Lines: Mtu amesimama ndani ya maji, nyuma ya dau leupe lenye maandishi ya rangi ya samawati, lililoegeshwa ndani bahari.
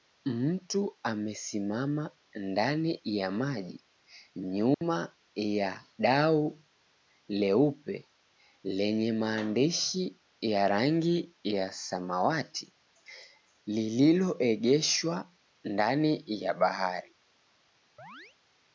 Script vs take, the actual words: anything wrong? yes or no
yes